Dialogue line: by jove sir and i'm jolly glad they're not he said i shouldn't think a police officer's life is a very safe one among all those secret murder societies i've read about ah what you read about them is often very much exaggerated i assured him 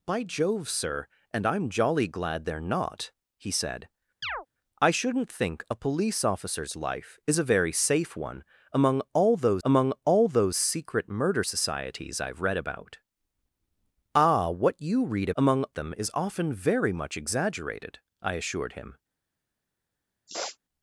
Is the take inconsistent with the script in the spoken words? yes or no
yes